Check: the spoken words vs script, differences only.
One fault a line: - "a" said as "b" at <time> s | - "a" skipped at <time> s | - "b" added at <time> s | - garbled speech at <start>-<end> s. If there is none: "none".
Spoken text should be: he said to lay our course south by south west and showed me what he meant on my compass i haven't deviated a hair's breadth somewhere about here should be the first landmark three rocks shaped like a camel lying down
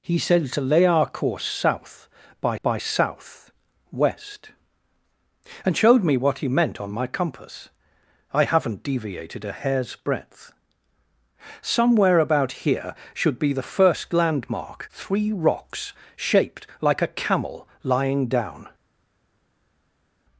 - "by" added at 2.6 s